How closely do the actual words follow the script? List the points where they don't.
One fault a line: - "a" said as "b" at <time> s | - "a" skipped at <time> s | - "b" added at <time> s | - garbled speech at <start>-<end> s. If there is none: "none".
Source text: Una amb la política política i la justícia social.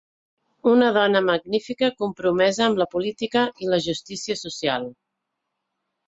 - "dona magnífica compromesa" added at 0.9 s
- "política" skipped at 3.4 s